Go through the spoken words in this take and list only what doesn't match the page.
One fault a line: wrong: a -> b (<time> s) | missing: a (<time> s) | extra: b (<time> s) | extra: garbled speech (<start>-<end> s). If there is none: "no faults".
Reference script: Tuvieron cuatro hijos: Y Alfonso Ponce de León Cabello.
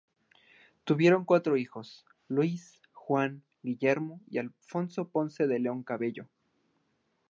extra: Luis Juan Guillermo (2.3 s)